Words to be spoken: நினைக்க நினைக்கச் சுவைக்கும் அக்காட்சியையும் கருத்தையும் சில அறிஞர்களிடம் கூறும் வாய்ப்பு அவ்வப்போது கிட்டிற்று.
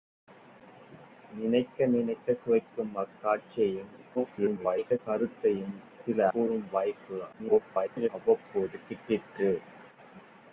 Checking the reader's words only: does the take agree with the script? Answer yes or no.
no